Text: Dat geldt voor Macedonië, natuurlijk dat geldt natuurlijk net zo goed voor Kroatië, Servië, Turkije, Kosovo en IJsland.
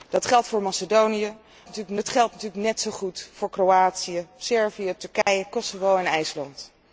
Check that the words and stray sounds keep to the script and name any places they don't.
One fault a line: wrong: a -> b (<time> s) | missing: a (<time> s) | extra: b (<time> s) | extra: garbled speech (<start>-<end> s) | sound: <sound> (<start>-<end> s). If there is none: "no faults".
sound: dropout (5.2-5.3 s)